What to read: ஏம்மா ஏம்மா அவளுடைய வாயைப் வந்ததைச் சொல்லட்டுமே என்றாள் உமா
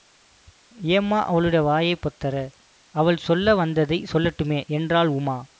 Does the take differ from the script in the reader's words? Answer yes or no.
yes